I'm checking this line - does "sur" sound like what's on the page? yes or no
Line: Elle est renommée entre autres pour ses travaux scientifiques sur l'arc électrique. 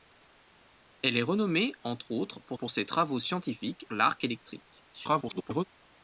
no